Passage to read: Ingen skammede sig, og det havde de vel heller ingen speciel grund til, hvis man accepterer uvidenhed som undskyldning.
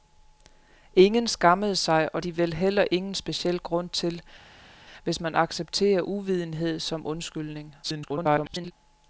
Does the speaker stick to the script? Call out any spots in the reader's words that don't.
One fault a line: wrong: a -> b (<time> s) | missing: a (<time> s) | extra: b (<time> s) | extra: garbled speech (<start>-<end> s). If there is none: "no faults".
missing: det havde (2.2 s)
extra: garbled speech (7.8-8.7 s)